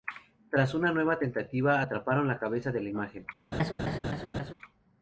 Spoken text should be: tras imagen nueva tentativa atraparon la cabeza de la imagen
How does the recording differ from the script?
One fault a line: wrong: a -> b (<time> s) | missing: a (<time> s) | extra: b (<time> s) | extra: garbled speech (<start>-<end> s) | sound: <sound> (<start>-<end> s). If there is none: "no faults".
wrong: imagen -> una (0.7 s)
sound: laugh (3.5-4.5 s)